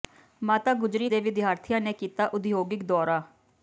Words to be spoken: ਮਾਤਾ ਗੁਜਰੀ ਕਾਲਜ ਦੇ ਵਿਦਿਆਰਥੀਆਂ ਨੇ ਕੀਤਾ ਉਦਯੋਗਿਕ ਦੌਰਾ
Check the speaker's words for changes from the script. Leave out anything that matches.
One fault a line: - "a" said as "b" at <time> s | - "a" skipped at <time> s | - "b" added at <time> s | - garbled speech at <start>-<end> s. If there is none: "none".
- "ਕਾਲਜ" skipped at 1.1 s